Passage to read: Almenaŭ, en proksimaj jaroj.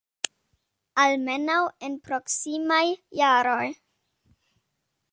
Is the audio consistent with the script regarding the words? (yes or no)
yes